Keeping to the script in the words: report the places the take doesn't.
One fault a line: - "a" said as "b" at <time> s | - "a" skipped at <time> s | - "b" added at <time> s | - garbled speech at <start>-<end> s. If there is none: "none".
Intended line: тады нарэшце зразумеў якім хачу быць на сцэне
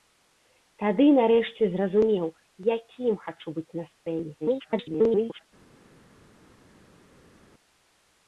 - garbled speech at 4.4-5.5 s